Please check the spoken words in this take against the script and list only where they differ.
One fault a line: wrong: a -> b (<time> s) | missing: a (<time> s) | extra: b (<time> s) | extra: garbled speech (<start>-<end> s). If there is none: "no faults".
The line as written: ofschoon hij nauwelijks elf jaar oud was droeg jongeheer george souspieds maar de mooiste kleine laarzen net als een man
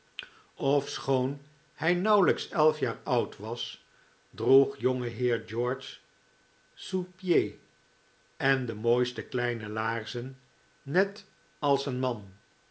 wrong: maar -> en (8.4 s)